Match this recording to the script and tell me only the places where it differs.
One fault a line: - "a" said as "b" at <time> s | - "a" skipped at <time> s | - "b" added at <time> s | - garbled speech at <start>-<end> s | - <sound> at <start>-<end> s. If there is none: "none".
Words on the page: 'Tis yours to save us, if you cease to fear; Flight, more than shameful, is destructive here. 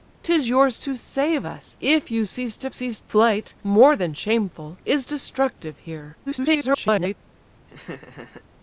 - "fear" said as "cease" at 2.7 s
- garbled speech at 6.3-7.1 s
- laugh at 7.7-8.4 s